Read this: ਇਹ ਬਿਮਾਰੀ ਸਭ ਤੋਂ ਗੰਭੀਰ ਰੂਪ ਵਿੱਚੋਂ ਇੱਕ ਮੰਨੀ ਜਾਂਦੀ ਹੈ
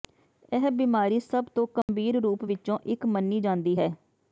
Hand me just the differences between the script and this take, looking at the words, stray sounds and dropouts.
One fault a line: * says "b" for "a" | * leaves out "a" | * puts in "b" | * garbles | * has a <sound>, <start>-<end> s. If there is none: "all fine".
* has a dropout, 1.8-1.9 s